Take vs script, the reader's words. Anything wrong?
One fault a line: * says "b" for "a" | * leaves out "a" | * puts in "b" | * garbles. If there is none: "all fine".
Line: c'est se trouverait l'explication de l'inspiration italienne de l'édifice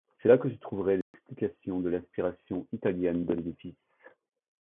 * puts in "là que"